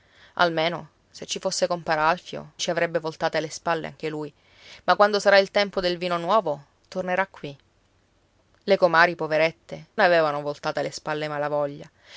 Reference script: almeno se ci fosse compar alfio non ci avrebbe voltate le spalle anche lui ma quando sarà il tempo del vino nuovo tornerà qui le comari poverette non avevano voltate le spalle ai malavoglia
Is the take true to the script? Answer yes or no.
no